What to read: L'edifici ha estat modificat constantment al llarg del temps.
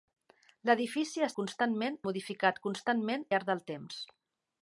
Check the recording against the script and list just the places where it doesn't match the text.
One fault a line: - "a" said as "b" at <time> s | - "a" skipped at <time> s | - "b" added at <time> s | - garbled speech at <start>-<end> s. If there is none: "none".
- "estat" said as "constantment" at 1.4 s
- "al" skipped at 3.3 s